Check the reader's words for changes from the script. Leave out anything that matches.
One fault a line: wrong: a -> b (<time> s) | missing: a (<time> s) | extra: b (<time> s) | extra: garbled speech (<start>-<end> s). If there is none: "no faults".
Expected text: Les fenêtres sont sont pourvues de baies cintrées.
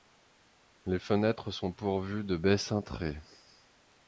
missing: sont (1.7 s)